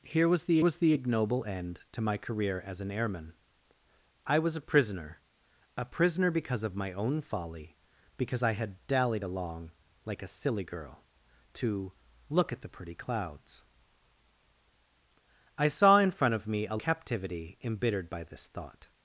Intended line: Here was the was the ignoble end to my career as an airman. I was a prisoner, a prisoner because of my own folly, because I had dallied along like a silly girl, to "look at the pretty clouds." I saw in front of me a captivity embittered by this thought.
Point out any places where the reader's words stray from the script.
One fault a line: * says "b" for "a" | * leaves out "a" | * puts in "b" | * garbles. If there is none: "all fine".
all fine